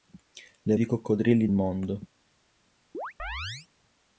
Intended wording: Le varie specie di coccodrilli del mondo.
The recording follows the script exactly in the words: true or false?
false